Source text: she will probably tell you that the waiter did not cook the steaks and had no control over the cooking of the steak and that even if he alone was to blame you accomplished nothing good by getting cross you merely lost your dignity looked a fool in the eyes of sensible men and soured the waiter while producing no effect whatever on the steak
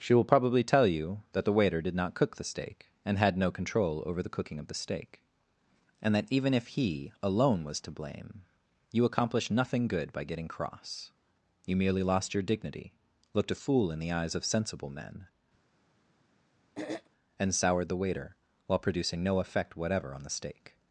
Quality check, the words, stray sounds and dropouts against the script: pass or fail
fail